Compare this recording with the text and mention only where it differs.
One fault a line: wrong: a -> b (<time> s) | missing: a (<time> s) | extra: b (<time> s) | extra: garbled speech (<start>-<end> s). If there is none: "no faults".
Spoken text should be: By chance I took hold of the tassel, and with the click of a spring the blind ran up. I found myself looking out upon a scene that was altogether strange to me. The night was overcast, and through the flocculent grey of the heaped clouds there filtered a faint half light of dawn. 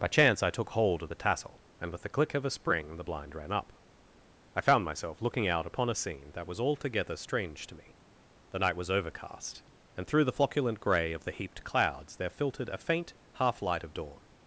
no faults